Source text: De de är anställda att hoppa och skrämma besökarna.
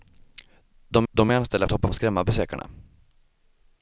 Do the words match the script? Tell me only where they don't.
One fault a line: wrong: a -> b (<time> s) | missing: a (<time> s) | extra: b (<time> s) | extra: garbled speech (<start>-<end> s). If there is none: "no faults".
no faults